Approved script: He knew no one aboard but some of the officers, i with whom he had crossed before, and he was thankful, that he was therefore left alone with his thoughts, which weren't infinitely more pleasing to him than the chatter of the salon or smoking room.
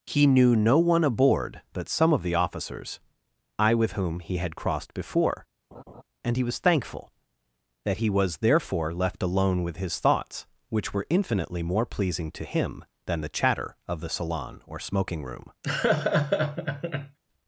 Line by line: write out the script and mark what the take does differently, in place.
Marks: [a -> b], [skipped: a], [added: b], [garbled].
He knew no one aboard but some of the officers, i with whom he had crossed before, and he was thankful, that he was therefore left alone with his thoughts, which [weren't -> were] infinitely more pleasing to him than the chatter of the salon or smoking room.